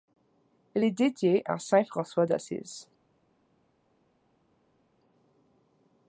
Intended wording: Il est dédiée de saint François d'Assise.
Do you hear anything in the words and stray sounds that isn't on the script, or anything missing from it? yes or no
yes